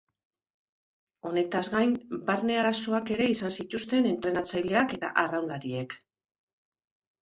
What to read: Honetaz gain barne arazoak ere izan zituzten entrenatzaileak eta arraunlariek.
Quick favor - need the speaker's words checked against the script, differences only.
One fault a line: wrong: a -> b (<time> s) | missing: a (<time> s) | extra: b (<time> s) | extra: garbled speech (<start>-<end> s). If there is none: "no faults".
no faults